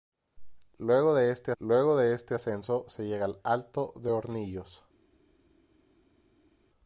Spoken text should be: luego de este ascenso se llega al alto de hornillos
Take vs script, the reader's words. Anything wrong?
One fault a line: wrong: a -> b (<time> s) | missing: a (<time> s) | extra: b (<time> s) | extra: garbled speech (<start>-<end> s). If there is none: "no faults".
extra: luego de este (1.6 s)